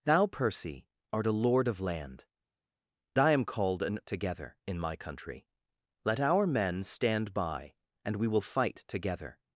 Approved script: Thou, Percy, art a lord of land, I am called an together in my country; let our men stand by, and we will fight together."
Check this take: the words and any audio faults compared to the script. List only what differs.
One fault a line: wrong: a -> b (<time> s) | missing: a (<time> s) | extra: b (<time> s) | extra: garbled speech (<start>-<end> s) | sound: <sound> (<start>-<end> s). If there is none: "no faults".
no faults